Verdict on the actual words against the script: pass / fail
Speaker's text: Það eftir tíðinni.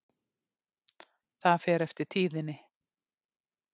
fail